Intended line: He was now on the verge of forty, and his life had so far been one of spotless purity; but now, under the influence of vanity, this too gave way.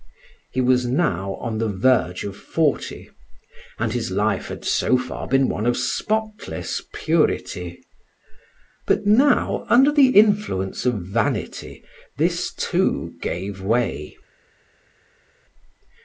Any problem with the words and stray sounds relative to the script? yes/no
no